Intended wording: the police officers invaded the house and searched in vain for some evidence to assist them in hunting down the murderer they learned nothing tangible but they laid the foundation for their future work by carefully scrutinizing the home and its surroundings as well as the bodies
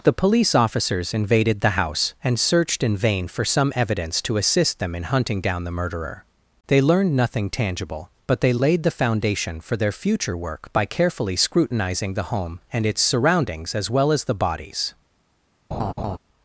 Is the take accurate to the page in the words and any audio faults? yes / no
no